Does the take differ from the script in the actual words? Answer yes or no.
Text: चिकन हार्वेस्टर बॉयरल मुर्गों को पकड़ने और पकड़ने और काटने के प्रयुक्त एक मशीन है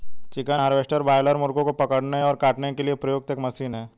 yes